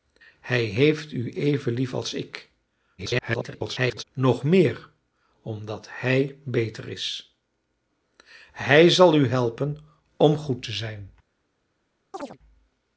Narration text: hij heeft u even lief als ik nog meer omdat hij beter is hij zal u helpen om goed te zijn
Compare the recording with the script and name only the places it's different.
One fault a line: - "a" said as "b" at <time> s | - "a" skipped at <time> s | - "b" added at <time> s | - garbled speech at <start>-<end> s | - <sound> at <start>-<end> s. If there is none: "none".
- garbled speech at 3.0-4.0 s
- chirp at 12.1-12.4 s